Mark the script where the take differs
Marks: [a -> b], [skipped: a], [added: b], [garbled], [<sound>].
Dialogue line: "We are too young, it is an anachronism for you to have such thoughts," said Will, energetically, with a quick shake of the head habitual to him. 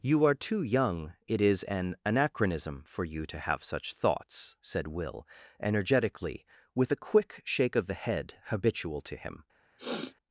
["We -> You] are too young, it is an anachronism for you to have such thoughts," said Will, energetically, with a quick shake of the head habitual to him. [sniff]